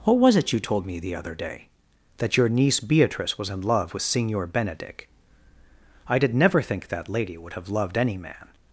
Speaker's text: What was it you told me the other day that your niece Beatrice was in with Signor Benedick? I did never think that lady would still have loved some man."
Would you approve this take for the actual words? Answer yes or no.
no